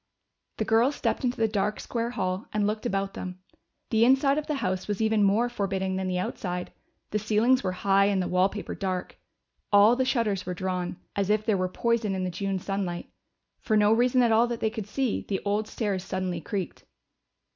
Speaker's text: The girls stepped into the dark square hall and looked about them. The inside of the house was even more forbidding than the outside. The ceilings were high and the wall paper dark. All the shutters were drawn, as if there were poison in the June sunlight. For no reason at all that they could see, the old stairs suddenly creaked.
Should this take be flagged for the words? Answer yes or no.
no